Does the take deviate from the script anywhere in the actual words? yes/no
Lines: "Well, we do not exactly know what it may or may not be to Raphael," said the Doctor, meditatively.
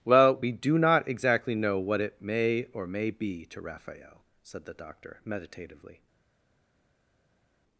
yes